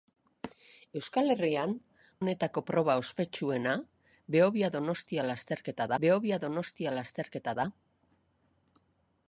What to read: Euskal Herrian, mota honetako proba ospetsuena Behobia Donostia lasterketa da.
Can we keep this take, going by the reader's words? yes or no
no